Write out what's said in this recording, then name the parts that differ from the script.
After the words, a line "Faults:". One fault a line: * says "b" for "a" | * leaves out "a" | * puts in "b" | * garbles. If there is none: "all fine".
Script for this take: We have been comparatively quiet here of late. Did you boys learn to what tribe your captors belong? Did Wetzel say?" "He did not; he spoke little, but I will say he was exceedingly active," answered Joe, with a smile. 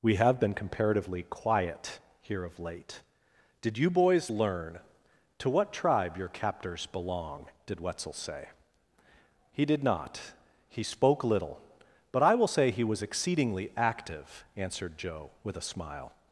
We have been comparatively quiet here of late. Did you boys learn to what tribe your captors belong? Did Wetzel say?" "He did not; he spoke little, but I will say he was exceedingly active," answered Joe, with a smile.
Faults:
all fine